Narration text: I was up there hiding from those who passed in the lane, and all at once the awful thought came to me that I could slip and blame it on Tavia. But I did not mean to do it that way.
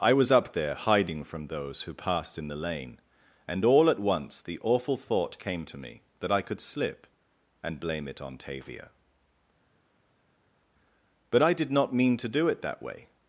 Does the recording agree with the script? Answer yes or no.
yes